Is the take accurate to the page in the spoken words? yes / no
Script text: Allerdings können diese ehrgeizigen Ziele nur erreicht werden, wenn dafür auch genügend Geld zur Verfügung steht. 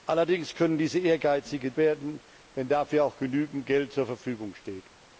no